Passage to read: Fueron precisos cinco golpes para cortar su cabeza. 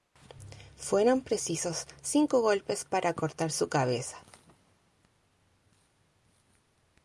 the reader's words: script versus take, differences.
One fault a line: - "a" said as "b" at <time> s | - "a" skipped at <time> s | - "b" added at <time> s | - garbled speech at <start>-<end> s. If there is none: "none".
none